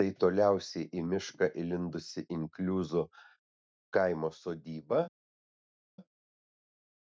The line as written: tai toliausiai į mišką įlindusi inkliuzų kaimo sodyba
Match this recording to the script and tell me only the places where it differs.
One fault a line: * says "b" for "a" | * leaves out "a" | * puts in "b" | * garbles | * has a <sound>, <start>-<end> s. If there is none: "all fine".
all fine